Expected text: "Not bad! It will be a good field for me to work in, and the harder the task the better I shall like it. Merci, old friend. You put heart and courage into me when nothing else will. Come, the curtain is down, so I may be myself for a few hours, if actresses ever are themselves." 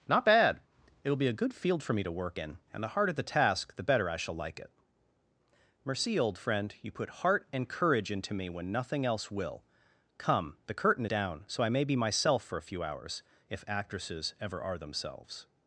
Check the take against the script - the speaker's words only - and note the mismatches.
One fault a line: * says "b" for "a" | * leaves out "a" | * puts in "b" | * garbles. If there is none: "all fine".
* leaves out "is"